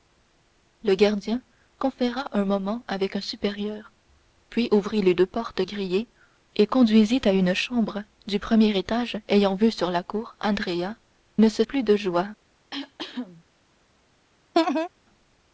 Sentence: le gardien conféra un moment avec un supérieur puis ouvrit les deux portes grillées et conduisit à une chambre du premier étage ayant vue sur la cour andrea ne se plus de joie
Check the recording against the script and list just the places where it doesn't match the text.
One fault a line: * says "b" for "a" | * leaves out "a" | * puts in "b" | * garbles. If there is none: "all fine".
all fine